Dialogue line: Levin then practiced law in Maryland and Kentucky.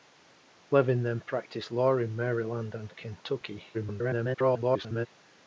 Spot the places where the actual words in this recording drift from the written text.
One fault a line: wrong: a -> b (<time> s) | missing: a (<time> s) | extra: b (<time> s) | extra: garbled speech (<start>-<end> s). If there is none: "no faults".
extra: garbled speech (3.7-5.1 s)